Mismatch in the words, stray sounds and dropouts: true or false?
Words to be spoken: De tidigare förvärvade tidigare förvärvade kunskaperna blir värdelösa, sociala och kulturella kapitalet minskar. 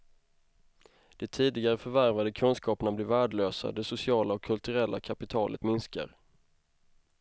true